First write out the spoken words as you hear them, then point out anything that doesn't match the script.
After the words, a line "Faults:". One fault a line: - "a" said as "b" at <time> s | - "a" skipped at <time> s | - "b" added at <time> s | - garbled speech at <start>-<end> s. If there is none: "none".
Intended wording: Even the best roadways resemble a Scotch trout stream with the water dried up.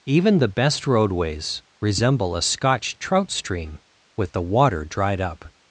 Even the best roadways resemble a Scotch trout stream with the water dried up.
Faults:
none